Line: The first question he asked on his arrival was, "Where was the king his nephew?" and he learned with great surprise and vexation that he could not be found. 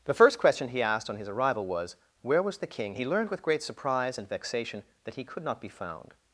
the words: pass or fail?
fail